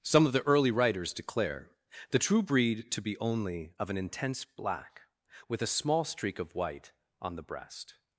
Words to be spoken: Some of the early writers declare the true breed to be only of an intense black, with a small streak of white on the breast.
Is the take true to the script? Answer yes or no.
yes